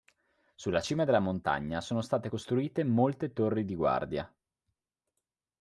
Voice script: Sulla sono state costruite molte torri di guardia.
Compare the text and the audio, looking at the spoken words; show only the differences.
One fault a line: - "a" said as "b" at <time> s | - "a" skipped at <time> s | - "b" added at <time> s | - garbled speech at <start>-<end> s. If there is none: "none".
- "cima della montagna" added at 0.8 s